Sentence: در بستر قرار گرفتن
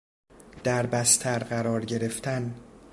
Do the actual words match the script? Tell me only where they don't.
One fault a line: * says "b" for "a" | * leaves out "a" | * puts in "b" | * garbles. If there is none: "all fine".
all fine